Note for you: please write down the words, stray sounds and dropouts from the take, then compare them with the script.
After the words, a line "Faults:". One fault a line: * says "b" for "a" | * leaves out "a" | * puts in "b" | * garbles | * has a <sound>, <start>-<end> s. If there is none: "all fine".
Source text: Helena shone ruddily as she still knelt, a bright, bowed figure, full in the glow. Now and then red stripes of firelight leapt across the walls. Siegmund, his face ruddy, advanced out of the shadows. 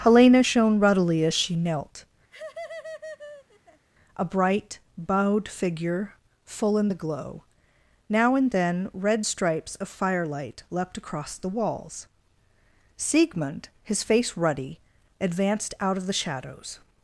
Helena shone ruddily as she knelt, a bright, bowed figure, full in the glow. Now and then red stripes of firelight leapt across the walls. Siegmund, his face ruddy, advanced out of the shadows.
Faults:
* leaves out "still"
* has a laugh, 2.3-3.9 s